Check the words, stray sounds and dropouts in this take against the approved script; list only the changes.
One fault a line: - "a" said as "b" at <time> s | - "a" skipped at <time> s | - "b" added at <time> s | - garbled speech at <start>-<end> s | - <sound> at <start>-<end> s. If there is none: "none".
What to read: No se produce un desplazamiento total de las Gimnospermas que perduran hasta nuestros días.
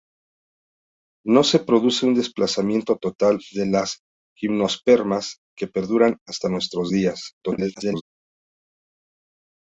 - garbled speech at 7.4-8.0 s